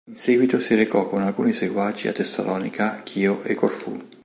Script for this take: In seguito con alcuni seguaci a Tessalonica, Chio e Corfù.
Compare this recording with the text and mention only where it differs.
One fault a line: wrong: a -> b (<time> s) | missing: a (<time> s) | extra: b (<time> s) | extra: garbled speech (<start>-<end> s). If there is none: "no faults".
extra: si recò (0.6 s)